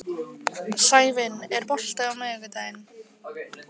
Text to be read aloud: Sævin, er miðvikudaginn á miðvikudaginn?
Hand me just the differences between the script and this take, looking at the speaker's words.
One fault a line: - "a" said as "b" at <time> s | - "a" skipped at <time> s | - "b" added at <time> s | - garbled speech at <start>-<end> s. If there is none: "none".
- "miðvikudaginn" said as "bolti" at 1.7 s